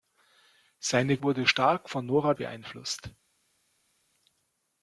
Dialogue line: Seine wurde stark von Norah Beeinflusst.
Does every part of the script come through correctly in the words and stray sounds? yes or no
yes